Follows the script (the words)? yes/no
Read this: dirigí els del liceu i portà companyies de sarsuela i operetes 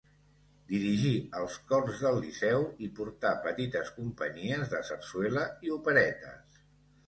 no